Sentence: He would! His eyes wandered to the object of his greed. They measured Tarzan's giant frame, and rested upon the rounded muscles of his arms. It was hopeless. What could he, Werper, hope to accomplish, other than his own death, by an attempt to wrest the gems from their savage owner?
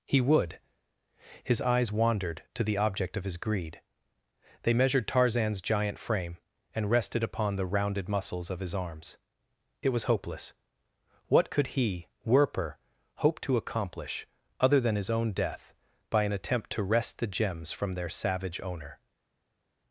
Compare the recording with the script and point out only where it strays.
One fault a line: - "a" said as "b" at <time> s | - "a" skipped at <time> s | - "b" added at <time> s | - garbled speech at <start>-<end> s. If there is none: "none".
none